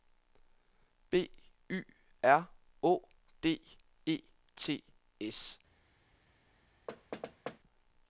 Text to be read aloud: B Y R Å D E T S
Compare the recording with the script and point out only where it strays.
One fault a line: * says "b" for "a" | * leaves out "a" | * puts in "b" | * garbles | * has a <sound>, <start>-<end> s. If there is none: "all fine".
* has a thud, 6.9-7.6 s